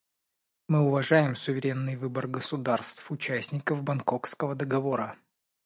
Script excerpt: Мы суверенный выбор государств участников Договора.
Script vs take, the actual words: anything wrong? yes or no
yes